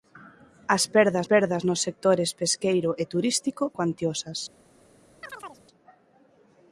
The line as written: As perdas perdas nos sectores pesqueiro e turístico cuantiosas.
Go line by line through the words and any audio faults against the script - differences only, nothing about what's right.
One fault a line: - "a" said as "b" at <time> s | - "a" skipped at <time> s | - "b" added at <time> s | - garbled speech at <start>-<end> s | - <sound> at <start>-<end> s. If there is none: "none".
- chirp at 5.2-5.6 s